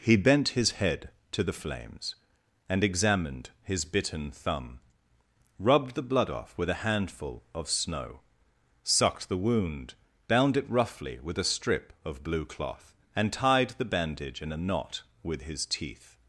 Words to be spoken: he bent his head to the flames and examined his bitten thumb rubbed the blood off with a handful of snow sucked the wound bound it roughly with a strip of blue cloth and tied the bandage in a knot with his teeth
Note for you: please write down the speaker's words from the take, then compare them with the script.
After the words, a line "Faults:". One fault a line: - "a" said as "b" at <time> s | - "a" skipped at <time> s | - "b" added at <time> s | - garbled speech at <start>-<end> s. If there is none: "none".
he bent his head to the flames and examined his bitten thumb rubbed the blood off with a handful of snow sucked the wound bound it roughly with a strip of blue cloth and tied the bandage in a knot with his teeth
Faults:
none